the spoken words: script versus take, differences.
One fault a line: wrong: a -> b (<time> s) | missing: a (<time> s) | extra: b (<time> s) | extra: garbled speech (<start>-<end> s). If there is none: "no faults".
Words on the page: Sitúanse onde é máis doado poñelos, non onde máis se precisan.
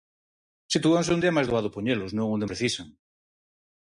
missing: máis se (2.5 s)